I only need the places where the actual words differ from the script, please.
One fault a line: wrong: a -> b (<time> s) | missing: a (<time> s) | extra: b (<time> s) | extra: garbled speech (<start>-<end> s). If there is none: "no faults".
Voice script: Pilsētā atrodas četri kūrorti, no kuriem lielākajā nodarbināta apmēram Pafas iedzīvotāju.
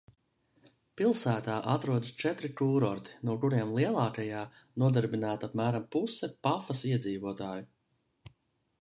extra: puse (6.0 s)